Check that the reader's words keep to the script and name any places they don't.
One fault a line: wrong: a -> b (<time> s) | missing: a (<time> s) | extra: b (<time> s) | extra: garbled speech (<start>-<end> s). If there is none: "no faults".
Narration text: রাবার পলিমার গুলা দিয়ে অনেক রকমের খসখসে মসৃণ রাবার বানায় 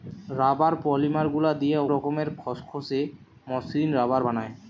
missing: অনেক (1.8 s)